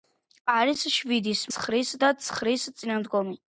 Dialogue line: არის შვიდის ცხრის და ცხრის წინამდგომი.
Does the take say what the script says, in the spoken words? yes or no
yes